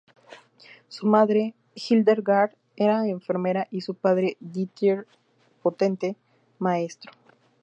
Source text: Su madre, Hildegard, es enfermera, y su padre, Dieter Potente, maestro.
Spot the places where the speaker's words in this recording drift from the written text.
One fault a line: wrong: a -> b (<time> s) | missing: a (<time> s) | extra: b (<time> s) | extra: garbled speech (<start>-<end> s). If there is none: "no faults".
wrong: es -> era (2.8 s)